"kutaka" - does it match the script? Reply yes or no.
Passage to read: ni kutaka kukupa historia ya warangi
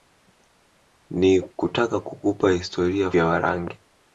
yes